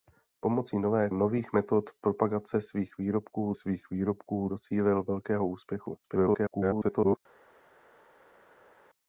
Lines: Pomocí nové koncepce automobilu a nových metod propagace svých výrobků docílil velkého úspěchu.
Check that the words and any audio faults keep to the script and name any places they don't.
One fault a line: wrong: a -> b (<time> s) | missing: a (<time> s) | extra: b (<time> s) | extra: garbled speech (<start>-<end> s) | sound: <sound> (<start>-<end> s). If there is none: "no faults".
missing: koncepce automobilu a (1.1 s)
extra: svých výrobků (3.5 s)
extra: garbled speech (6.0-7.2 s)